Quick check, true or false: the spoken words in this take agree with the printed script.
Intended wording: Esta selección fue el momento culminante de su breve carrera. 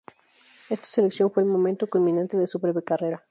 true